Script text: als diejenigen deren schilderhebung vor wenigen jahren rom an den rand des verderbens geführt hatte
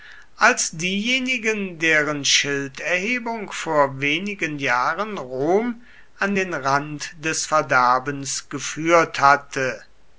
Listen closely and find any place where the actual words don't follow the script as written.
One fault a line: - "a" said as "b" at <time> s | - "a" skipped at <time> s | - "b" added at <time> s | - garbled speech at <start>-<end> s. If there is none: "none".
none